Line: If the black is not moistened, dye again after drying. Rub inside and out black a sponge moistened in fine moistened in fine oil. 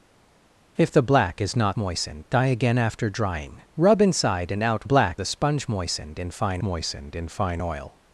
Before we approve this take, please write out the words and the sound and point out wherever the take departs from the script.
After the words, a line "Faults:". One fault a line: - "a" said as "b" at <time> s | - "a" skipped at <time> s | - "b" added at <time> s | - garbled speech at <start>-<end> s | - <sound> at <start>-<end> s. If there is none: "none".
If the black is not moistened, dye again after drying. Rub inside and out black a sponge moistened in fine moistened in fine oil.
Faults:
none